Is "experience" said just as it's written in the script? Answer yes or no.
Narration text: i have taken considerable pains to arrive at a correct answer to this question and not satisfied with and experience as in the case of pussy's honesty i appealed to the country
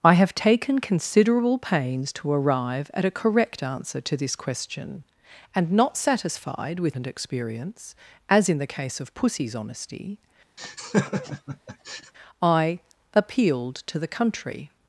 yes